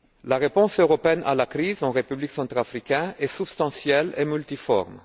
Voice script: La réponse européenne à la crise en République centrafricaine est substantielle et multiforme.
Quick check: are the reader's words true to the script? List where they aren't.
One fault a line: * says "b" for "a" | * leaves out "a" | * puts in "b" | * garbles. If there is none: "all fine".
all fine